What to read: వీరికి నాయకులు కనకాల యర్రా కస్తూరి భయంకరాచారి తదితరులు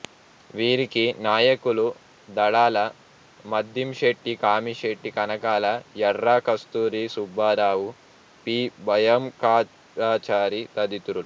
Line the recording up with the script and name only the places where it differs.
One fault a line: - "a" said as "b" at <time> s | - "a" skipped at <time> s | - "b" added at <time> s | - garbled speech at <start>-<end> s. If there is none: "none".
- "దడాల మద్దింశెట్టి కామిశెట్టి" added at 2.3 s
- "సుబ్బారావు పి" added at 7.1 s